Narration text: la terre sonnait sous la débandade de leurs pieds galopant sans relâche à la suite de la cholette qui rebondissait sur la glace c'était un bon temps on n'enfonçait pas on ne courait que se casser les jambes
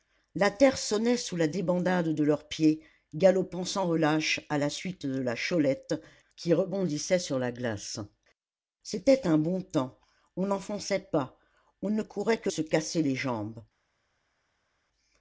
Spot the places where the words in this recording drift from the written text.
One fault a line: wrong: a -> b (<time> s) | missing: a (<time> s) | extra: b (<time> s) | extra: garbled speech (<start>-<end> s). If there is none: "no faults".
no faults